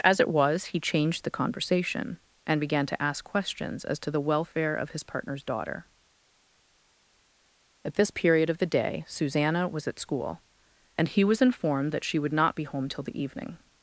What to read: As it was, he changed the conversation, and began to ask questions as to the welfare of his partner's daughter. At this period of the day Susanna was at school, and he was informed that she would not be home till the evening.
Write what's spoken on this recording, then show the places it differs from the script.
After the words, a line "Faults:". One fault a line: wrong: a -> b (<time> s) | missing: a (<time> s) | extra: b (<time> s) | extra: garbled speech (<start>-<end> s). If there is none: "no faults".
As it was, he changed the conversation, and began to ask questions as to the welfare of his partner's daughter. At this period of the day Susanna was at school, and he was informed that she would not be home till the evening.
Faults:
no faults